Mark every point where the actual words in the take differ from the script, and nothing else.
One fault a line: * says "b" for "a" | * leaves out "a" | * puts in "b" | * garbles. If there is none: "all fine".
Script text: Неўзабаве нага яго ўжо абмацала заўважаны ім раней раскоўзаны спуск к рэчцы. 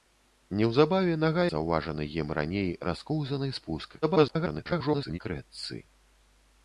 * leaves out "яго ўжо абмацала"
* garbles